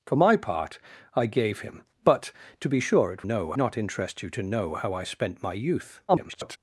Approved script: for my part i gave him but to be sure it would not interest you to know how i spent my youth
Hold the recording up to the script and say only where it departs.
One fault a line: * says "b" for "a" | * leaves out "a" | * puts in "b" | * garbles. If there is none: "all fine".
* says "know" for "would"
* garbles